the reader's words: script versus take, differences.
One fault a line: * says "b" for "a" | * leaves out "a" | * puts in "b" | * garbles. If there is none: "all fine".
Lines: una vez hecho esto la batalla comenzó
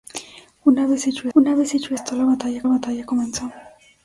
* puts in "una vez hecho"
* puts in "batalla"